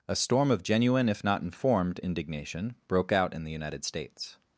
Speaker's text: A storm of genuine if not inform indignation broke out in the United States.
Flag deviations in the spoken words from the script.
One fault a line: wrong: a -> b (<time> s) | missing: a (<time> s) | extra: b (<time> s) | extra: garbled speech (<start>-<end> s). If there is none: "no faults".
wrong: inform -> informed (1.4 s)